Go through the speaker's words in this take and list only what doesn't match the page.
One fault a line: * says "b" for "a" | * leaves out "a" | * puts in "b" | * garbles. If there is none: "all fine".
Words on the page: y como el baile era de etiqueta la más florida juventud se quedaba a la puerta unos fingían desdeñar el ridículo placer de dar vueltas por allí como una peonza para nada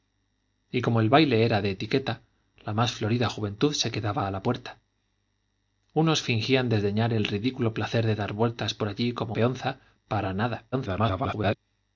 * leaves out "una"
* garbles